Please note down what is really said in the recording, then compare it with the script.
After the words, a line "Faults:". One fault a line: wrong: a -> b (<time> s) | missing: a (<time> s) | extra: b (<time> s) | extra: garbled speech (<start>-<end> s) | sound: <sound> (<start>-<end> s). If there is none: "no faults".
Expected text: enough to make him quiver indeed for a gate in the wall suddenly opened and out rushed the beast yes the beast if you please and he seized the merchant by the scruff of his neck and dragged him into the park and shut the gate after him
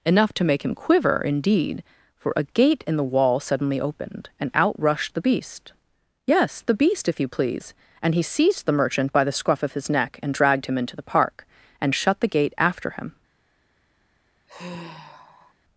enough to make him quiver indeed for a gate in the wall suddenly opened and out rushed the beast yes the beast if you please and he seized the merchant by the scruff of his neck and dragged him into the park and shut the gate after him
Faults:
sound: sigh (14.5-15.5 s)